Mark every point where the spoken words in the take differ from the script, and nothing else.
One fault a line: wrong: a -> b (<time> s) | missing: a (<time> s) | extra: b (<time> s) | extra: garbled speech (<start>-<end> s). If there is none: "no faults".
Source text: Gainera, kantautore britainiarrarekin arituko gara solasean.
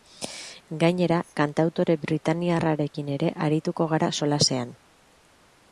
extra: ere (3.2 s)